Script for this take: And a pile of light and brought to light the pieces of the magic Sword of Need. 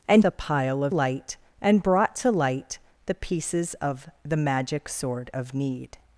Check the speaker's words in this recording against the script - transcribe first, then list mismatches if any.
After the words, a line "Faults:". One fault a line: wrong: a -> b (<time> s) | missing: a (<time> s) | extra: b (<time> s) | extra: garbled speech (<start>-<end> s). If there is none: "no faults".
And a pile of light and brought to light the pieces of the magic Sword of Need.
Faults:
no faults